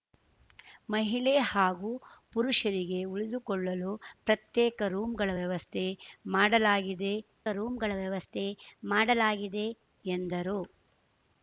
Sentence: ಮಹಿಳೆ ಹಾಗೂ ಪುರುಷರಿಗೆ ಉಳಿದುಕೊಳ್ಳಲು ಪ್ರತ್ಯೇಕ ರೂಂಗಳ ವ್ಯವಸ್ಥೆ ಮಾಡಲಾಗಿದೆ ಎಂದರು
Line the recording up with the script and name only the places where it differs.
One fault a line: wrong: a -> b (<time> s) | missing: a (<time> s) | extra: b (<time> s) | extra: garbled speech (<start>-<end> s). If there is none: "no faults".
extra: ರೂಂಗಳ ವ್ಯವಸ್ಥೆ ಮಾಡಲಾಗಿದೆ (7.5 s)